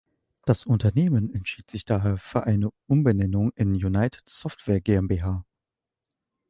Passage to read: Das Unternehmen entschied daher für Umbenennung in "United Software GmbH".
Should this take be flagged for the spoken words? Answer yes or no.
yes